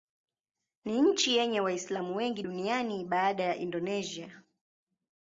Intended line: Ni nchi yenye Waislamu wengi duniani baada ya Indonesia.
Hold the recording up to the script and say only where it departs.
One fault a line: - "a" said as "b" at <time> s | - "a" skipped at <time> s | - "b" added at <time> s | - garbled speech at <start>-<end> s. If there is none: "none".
none